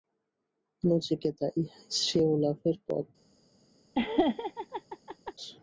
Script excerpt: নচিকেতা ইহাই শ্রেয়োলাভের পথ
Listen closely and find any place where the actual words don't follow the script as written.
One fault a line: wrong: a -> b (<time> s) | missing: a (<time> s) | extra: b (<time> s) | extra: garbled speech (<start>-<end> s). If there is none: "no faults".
no faults